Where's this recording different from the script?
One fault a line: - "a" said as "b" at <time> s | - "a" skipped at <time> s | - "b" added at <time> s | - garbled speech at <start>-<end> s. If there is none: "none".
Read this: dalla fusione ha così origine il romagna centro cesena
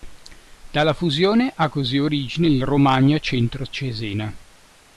none